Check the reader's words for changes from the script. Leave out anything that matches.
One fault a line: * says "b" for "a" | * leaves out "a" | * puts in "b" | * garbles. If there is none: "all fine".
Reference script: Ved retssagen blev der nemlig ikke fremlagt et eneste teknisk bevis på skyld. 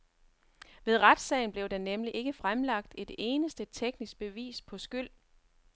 all fine